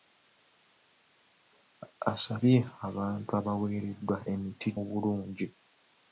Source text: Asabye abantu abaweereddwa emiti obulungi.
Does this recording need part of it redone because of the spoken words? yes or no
no